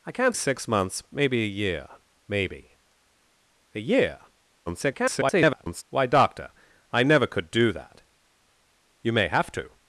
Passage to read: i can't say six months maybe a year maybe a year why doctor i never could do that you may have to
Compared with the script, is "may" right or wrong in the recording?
right